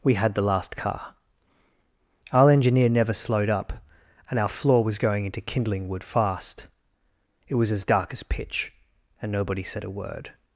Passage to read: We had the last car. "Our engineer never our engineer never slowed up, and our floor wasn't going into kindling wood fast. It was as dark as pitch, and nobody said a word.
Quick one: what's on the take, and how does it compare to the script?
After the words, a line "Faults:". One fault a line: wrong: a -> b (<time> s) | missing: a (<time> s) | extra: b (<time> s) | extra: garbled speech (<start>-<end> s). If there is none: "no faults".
We had the last car. "Our engineer never slowed up, and our floor was going into kindling wood fast. It was as dark as pitch, and nobody said a word.
Faults:
missing: our engineer never (3.1 s)
wrong: wasn't -> was (4.8 s)